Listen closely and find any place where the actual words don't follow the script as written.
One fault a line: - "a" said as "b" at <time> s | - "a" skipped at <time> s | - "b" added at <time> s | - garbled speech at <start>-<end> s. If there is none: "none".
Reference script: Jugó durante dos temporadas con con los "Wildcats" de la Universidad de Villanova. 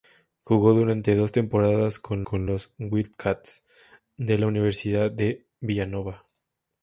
none